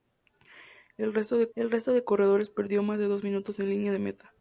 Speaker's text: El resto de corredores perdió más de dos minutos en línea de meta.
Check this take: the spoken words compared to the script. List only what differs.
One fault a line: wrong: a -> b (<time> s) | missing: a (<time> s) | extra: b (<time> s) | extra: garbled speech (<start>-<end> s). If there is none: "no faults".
extra: el resto de (1.5 s)